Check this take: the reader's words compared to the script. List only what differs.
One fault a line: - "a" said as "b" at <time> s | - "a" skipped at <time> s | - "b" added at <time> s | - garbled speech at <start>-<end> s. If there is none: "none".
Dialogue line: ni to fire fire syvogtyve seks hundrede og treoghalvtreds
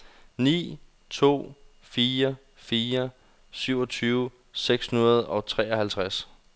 none